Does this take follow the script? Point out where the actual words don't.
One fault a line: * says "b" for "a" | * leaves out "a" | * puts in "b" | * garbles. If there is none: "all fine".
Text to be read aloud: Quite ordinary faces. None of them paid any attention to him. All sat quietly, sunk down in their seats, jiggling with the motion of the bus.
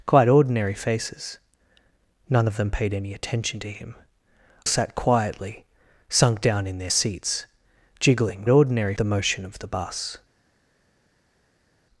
* leaves out "All"
* says "ordinary" for "with"